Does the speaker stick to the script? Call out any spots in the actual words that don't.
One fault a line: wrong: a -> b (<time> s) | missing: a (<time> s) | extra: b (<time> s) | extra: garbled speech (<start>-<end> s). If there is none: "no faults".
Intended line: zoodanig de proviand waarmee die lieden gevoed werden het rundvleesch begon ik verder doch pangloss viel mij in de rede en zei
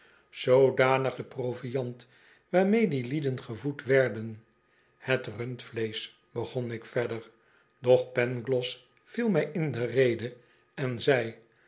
no faults